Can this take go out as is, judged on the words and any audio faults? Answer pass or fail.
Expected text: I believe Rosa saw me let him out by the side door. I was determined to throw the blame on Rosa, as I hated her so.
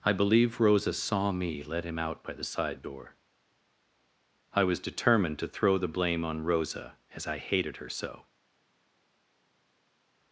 pass